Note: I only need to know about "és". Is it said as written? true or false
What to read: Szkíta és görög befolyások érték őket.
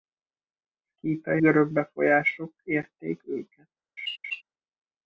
false